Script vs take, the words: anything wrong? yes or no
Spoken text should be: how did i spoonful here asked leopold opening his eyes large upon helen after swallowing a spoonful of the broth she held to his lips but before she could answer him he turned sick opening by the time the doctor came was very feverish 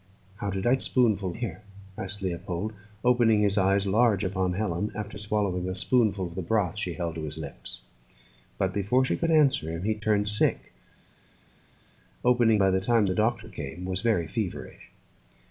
no